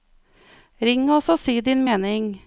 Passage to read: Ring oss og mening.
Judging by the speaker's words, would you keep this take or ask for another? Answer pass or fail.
fail